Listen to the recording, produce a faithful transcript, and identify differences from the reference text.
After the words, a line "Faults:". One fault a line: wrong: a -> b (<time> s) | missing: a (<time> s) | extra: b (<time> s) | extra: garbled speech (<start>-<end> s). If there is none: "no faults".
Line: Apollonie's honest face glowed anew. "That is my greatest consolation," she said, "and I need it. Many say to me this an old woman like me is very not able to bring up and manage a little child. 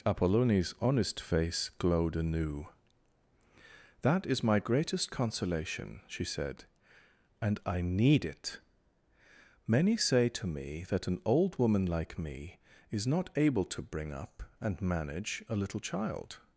Apollonie's honest face glowed anew. "That is my greatest consolation," she said, "and I need it. Many say to me that an old woman like me is not able to bring up and manage a little child.
Faults:
wrong: this -> that (10.9 s)
missing: very (13.1 s)